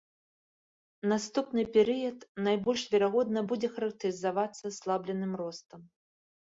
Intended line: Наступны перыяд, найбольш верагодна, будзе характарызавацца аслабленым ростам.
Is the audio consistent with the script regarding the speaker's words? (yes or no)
yes